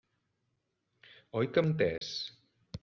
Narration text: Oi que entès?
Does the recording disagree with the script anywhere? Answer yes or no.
no